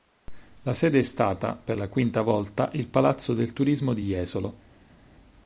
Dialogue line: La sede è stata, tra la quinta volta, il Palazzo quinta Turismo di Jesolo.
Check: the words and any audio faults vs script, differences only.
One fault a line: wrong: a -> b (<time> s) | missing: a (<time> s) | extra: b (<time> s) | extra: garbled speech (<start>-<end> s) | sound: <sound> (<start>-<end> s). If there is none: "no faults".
wrong: tra -> per (1.5 s)
wrong: quinta -> del (3.3 s)